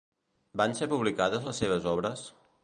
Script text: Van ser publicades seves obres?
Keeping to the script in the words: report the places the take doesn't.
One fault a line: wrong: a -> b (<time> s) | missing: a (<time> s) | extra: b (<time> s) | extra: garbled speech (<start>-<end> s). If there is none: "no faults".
extra: les (1.5 s)